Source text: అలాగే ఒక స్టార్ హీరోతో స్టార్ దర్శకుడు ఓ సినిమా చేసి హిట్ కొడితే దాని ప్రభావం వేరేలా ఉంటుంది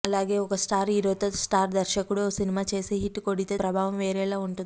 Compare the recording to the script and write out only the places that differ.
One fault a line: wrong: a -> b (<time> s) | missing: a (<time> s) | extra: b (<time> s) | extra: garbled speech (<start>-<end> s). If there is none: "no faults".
missing: దాని (3.5 s)